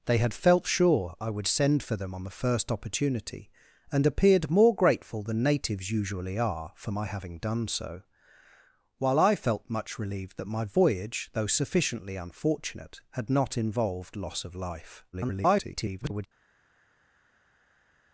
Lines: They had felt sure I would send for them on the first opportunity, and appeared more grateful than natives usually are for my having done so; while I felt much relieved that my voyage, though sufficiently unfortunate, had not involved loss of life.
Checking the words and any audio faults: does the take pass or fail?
fail